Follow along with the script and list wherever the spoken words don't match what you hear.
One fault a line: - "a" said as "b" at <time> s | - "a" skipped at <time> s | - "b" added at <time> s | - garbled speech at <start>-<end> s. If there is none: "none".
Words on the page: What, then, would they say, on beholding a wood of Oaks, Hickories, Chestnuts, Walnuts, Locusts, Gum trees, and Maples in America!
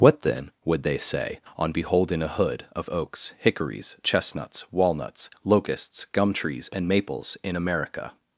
- "wood" said as "hood" at 2.3 s